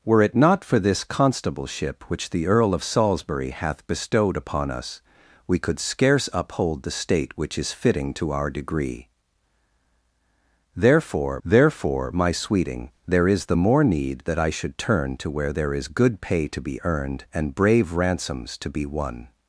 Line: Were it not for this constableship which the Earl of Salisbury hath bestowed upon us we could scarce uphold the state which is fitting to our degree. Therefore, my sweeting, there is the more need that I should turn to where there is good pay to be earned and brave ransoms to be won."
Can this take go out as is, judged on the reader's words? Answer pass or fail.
fail